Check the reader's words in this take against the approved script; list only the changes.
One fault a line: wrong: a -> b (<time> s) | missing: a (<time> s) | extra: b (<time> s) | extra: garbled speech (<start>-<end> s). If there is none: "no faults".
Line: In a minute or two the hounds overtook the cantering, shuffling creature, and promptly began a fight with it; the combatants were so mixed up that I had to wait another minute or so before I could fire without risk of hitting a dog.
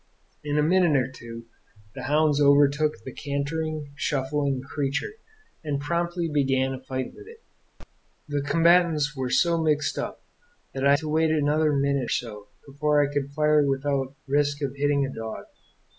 missing: had (11.0 s)
missing: or (12.1 s)